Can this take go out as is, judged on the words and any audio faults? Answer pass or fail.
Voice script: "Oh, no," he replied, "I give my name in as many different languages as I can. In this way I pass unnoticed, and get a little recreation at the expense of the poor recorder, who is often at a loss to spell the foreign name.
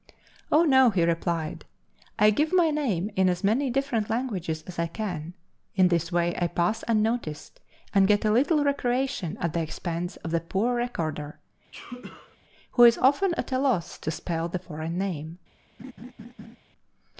fail